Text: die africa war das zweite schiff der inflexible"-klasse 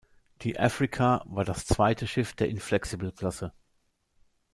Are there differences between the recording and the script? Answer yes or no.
no